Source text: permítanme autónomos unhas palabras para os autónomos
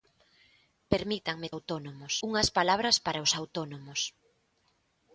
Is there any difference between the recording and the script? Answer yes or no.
no